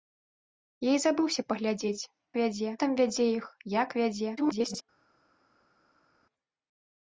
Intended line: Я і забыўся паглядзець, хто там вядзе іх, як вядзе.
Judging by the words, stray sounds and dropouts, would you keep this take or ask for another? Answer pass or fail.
fail